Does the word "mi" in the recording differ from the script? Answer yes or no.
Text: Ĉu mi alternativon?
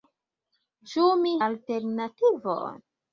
no